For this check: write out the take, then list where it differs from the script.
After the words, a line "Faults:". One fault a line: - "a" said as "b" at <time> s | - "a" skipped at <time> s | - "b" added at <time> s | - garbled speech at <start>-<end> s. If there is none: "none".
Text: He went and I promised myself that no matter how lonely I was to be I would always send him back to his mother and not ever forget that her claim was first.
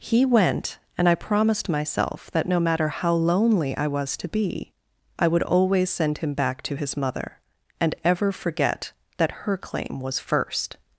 He went and I promised myself that no matter how lonely I was to be I would always send him back to his mother and ever forget that her claim was first.
Faults:
- "not" skipped at 7.9 s